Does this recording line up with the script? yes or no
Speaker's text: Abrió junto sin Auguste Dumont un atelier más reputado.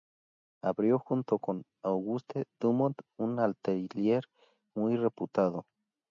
no